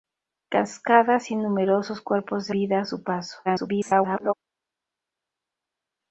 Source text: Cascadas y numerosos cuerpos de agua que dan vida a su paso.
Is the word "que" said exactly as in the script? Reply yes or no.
no